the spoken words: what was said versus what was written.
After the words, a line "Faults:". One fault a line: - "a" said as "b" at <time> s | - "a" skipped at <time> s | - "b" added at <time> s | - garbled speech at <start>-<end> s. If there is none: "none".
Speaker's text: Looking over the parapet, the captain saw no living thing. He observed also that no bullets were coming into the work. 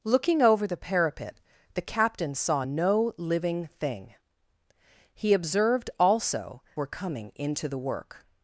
Looking over the parapet, the captain saw no living thing. He observed also were coming into the work.
Faults:
- "that no bullets" skipped at 6.6 s